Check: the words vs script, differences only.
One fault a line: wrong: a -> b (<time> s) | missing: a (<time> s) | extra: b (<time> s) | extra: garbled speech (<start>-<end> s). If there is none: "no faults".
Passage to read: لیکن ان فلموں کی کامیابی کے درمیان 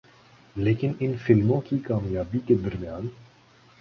no faults